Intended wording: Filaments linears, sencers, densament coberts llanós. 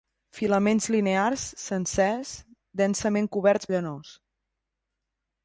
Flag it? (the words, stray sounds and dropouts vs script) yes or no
no